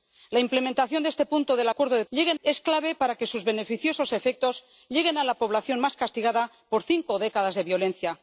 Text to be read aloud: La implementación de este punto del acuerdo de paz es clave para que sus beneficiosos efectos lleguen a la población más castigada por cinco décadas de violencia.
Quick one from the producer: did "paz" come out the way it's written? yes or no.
no